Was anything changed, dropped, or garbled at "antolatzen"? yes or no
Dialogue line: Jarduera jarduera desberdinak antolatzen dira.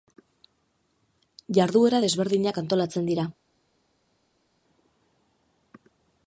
no